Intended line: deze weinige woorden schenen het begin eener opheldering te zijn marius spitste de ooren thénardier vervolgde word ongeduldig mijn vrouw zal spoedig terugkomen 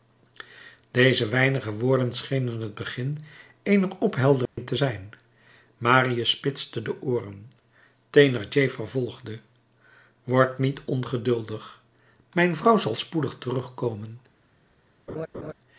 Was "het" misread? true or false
false